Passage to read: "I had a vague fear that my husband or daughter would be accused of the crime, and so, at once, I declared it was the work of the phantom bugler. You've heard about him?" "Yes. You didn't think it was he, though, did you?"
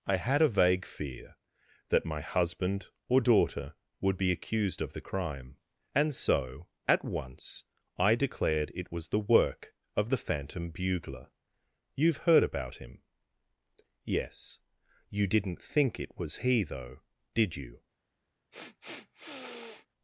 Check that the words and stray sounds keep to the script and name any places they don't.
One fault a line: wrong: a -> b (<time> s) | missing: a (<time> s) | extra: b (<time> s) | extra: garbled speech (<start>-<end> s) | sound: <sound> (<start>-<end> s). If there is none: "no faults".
sound: sniff (18.5-19.9 s)